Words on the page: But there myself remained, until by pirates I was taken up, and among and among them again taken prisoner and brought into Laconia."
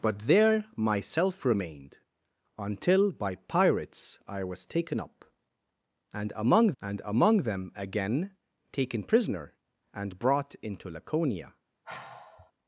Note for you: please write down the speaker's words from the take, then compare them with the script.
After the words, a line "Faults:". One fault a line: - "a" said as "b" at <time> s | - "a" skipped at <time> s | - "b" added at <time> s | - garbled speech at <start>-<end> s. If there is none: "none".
But there myself remained, until by pirates I was taken up, and among and among them again taken prisoner and brought into Laconia."
Faults:
none